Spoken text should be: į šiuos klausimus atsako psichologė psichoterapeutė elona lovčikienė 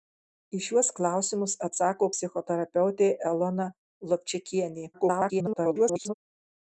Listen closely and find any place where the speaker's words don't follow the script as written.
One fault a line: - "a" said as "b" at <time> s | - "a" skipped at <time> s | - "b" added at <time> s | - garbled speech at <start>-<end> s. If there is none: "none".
- "psichologė" skipped at 2.1 s
- garbled speech at 4.9-6.1 s